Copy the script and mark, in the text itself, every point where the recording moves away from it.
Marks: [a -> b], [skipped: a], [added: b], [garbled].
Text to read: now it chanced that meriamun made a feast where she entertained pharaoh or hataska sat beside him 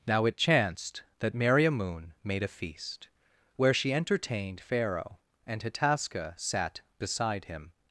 now it chanced that meriamun made a feast where she entertained pharaoh [or -> and] hataska sat beside him